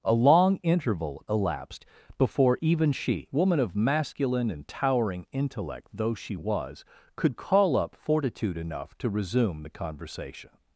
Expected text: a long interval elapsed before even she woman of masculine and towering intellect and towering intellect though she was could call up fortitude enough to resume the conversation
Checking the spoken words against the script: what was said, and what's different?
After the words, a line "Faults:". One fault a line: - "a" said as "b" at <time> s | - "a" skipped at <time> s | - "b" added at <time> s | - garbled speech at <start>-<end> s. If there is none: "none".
a long interval elapsed before even she woman of masculine and towering intellect though she was could call up fortitude enough to resume the conversation
Faults:
- "and towering intellect" skipped at 5.9 s